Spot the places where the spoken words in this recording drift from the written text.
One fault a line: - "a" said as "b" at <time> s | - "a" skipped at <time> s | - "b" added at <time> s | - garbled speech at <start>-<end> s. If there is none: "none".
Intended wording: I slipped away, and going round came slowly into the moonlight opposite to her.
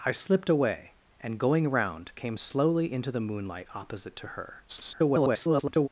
- garbled speech at 4.7-5.9 s